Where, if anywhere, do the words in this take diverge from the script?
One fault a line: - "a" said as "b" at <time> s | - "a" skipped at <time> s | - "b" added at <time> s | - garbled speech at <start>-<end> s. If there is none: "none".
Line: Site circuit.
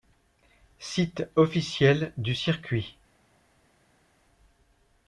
- "officiel du" added at 1.4 s